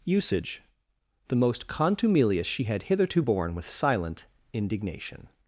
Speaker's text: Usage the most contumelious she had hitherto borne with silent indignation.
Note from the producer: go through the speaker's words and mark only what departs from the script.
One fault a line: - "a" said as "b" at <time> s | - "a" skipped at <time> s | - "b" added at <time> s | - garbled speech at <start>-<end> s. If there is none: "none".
none